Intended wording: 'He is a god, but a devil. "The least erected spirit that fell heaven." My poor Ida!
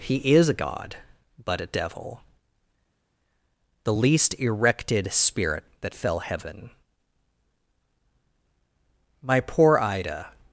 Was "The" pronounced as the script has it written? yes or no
yes